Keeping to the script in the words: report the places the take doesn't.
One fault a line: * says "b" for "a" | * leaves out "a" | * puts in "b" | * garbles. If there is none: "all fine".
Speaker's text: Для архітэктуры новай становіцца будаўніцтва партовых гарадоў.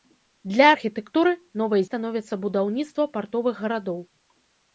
all fine